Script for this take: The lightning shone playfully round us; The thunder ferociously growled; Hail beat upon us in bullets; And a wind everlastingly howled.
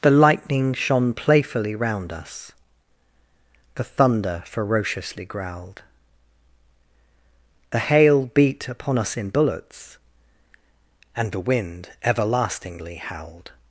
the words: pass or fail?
fail